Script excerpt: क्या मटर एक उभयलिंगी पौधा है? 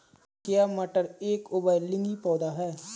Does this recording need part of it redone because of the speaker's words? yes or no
no